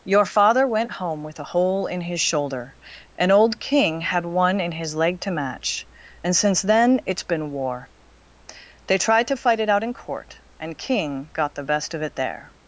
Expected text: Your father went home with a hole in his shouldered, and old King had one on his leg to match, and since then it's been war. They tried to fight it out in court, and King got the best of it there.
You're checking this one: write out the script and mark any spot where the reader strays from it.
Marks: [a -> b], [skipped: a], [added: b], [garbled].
Your father went home with a hole in his [shouldered, -> shoulder] and old King had one [on -> in] his leg to match, and since then it's been war. They tried to fight it out in court, and King got the best of it there.